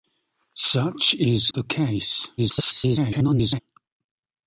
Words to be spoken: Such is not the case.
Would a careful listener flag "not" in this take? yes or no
yes